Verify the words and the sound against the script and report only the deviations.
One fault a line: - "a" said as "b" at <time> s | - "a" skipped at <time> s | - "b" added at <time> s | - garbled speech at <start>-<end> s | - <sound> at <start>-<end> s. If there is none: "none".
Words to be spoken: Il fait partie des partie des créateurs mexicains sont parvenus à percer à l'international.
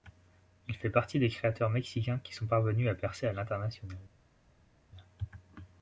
- "partie des" skipped at 1.3 s
- "qui" added at 2.2 s